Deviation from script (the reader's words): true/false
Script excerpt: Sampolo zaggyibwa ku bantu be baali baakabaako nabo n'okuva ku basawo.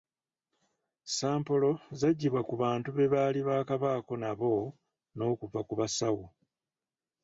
false